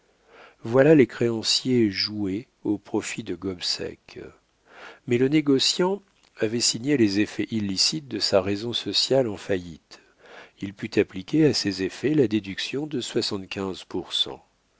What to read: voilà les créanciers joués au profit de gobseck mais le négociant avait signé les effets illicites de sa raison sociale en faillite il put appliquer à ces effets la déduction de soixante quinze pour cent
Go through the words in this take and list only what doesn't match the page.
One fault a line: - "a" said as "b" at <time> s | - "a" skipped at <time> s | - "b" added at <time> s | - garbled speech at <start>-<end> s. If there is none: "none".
none